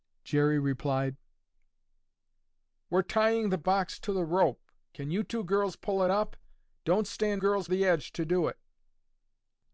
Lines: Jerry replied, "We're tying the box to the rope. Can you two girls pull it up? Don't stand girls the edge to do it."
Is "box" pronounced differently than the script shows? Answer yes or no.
no